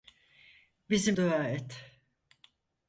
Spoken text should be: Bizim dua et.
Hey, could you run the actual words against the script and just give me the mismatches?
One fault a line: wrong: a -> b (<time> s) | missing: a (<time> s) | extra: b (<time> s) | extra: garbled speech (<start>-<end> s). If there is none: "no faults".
no faults